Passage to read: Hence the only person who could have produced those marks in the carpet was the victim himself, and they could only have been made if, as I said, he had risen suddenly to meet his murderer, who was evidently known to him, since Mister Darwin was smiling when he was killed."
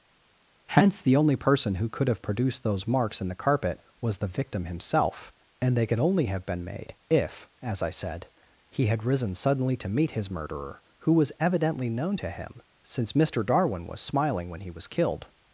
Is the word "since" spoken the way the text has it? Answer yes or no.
yes